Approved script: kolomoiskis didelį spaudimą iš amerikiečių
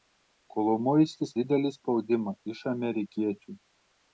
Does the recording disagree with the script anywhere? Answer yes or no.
no